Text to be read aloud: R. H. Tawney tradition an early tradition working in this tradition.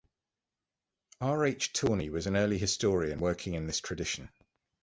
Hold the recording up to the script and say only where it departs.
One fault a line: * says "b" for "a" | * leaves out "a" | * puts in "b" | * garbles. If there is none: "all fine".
* says "was" for "tradition"
* says "historian" for "tradition"